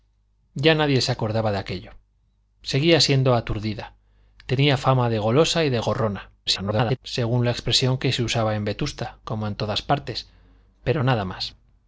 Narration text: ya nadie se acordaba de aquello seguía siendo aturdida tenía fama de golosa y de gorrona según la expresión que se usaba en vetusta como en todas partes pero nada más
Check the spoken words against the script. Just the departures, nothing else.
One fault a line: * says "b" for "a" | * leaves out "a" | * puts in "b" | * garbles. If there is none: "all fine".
* garbles